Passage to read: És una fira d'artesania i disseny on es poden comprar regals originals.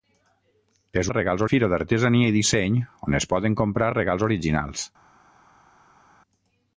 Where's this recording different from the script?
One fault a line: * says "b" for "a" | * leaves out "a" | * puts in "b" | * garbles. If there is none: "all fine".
* says "regals" for "una"